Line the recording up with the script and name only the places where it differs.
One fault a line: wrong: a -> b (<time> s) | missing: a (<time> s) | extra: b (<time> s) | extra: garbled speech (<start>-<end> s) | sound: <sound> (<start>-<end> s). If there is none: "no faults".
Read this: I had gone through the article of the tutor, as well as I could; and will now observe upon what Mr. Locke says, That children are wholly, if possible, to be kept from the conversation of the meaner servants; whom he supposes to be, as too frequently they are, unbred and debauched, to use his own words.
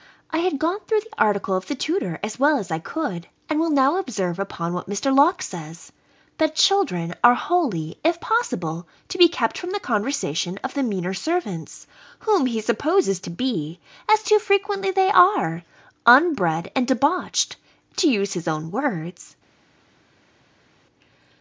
no faults